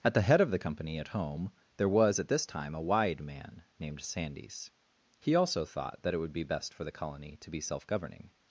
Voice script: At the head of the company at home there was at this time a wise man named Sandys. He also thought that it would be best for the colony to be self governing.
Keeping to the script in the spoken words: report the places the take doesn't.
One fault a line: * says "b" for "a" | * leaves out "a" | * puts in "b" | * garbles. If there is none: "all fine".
* says "wide" for "wise"